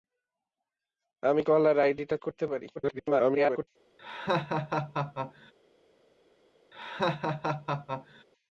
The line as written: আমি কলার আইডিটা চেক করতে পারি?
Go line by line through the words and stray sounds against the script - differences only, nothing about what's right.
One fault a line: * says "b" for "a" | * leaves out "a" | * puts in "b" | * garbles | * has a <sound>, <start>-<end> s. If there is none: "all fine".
* leaves out "চেক"
* garbles
* has a laugh, 4.0-5.5 s
* has a laugh, 6.7-8.2 s